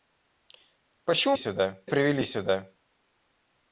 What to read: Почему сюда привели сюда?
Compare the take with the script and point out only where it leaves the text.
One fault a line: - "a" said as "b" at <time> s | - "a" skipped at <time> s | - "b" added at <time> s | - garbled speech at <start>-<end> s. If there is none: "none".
none